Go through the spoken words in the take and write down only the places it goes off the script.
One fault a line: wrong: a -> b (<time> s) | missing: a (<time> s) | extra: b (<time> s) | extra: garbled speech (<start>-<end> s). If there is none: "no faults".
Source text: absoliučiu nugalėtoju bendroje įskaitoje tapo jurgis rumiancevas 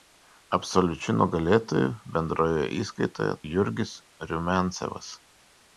missing: tapo (3.4 s)